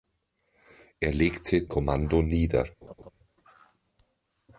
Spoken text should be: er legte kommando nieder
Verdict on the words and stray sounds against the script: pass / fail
fail